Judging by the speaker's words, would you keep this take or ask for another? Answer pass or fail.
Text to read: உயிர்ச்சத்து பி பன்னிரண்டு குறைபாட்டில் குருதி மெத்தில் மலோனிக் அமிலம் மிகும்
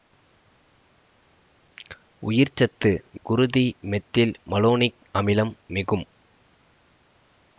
fail